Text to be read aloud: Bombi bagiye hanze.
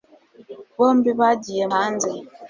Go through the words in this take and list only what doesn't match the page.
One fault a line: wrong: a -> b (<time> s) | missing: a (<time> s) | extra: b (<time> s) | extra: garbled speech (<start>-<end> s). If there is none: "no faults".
no faults